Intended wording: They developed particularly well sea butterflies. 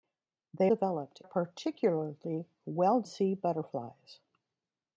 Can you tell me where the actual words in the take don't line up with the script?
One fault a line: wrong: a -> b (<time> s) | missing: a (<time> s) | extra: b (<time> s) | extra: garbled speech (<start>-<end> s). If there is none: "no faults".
no faults